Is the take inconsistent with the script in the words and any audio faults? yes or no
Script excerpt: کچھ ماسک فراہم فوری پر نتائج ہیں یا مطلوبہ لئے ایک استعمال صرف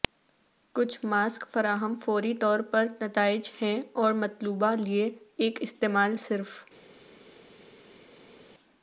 yes